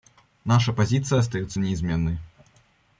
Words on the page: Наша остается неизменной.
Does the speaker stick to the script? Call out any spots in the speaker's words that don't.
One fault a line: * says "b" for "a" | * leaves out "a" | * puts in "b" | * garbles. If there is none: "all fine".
* puts in "позиция"